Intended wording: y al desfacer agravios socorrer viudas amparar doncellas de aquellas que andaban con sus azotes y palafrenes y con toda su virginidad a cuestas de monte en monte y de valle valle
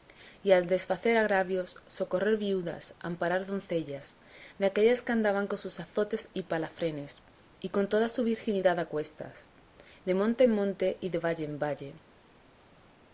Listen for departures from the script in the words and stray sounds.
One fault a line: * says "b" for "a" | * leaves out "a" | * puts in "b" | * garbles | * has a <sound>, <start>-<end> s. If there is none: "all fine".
* puts in "en"